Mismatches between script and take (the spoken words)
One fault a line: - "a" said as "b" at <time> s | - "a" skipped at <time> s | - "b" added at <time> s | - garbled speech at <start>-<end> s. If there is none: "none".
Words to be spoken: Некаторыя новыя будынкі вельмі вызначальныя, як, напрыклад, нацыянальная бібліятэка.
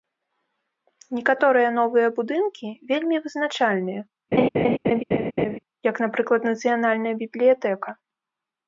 none